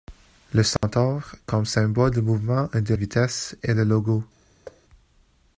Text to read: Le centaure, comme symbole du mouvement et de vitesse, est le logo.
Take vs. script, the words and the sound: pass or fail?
fail